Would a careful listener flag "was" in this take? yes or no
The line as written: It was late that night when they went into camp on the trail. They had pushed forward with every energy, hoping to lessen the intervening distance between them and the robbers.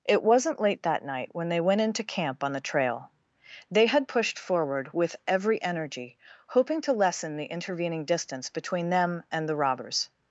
yes